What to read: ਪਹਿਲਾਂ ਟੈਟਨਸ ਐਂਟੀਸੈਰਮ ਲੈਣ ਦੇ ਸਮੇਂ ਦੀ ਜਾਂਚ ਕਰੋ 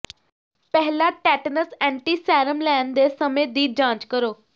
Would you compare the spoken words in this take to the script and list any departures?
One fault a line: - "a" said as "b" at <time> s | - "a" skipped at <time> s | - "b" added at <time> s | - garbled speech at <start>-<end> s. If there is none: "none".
none